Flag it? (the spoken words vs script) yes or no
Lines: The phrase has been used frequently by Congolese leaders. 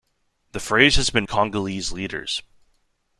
yes